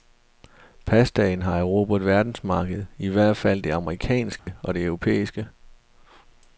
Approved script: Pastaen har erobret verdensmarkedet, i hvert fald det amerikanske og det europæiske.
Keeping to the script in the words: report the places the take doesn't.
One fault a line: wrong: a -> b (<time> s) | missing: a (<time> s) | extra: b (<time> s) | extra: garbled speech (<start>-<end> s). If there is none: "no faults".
no faults